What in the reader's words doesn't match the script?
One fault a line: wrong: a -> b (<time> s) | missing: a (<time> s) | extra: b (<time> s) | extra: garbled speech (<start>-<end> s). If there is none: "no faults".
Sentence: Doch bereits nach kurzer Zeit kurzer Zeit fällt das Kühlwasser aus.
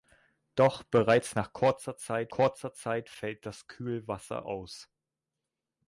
no faults